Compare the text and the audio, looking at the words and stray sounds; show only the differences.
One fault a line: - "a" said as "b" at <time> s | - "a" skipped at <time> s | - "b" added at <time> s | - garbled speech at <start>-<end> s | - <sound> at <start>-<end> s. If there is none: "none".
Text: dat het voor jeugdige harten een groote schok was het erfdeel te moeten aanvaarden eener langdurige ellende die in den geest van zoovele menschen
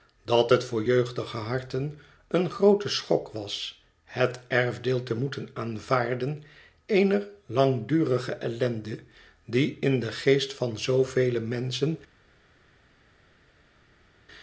none